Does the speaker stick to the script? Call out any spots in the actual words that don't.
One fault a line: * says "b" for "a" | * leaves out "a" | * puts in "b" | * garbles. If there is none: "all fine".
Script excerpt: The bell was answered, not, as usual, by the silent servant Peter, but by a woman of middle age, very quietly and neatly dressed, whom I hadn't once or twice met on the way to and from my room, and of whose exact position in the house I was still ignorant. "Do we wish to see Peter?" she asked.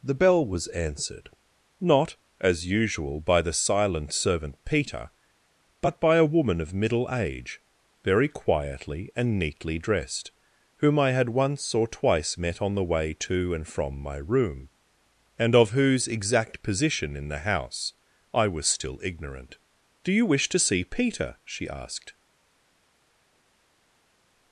* says "had" for "hadn't"
* says "you" for "we"